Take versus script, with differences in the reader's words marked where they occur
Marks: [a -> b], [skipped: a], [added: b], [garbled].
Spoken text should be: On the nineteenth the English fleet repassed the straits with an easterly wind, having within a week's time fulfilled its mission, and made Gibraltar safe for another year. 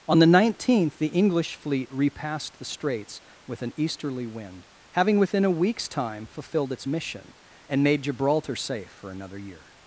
On the nineteenth the English fleet repassed the straits with an easterly wind, having within a week's time fulfilled its mission, and made Gibraltar safe for another year.